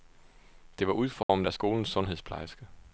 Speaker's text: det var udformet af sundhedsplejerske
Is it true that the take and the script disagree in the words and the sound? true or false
true